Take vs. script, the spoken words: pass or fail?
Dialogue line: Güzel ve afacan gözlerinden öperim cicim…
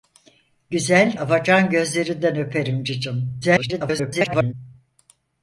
fail